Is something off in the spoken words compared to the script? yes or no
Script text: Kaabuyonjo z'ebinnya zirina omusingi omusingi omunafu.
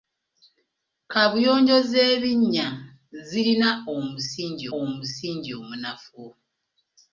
no